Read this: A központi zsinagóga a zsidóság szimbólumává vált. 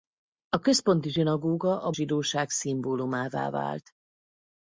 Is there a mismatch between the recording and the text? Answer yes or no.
no